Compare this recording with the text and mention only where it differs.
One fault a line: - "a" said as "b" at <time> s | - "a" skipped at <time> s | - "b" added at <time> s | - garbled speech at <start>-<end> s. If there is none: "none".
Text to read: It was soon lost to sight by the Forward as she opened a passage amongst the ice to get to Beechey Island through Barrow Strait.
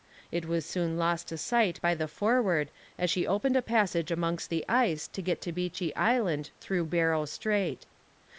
none